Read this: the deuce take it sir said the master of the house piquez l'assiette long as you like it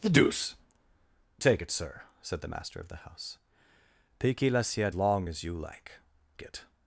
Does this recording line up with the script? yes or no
yes